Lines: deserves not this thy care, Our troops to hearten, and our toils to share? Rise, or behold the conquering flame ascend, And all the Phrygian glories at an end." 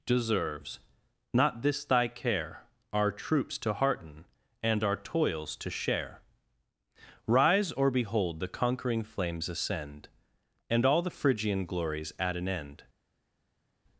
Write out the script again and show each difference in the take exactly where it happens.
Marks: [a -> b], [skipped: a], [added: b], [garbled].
deserves not this thy care, Our troops to hearten, and our toils to share? Rise, or behold the conquering [flame -> flames] ascend, And all the Phrygian glories at an end."